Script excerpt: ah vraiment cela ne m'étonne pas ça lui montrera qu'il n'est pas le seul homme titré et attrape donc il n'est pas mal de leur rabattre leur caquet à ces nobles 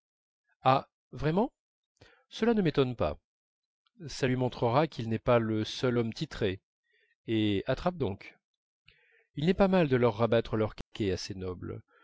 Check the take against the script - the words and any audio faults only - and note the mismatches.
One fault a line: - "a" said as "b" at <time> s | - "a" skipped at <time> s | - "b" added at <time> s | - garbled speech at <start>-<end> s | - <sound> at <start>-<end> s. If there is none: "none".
- dropout at 10.8-10.9 s